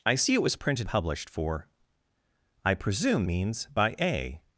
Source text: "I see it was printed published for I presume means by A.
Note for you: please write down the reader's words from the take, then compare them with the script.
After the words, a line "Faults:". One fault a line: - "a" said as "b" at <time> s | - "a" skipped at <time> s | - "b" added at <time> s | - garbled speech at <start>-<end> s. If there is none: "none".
"I see it was printed published for I presume means by A.
Faults:
none